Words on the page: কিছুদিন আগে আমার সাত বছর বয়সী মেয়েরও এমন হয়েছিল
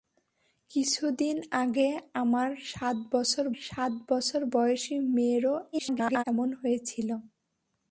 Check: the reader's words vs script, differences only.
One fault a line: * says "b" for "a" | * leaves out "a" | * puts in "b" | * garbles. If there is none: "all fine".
* puts in "সাত বছর"
* garbles